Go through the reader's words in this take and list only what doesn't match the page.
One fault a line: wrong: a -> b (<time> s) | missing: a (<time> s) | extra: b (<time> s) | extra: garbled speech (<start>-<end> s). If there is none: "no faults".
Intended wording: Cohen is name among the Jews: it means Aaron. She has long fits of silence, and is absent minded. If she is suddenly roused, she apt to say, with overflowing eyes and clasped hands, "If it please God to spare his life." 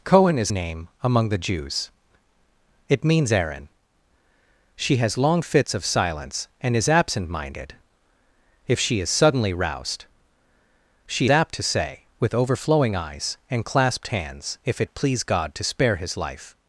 no faults